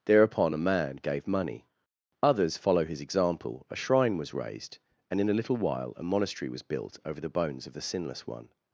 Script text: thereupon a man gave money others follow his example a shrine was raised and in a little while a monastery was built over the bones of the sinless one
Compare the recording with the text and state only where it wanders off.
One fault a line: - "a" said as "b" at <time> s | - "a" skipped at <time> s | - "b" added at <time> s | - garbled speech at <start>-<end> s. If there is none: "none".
none